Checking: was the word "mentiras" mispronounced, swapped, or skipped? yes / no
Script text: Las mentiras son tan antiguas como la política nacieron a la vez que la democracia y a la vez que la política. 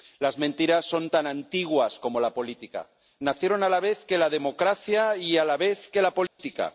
no